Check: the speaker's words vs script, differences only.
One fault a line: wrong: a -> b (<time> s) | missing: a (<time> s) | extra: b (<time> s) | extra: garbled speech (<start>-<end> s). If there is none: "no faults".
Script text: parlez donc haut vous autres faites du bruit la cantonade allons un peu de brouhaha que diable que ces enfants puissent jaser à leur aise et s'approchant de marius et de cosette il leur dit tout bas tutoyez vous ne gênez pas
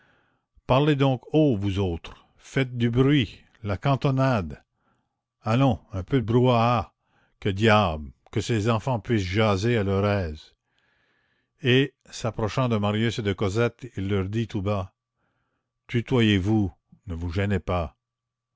extra: vous (17.1 s)